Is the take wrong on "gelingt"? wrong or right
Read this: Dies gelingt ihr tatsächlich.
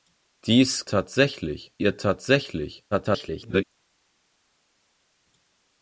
wrong